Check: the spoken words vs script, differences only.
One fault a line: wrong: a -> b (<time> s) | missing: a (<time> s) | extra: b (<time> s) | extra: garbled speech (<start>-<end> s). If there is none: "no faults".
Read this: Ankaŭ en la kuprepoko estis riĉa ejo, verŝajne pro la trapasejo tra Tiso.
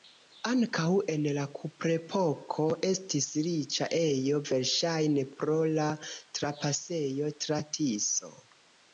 no faults